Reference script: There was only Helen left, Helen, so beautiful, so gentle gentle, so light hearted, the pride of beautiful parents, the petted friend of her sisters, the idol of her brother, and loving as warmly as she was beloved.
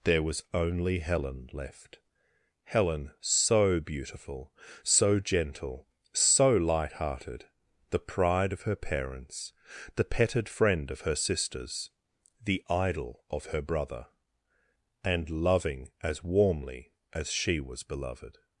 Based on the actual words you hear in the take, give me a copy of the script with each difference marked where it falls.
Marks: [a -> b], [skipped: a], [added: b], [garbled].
There was only Helen left, Helen, so beautiful, so gentle [skipped: gentle,] so light hearted, the pride of [beautiful -> her] parents, the petted friend of her sisters, the idol of her brother, and loving as warmly as she was beloved.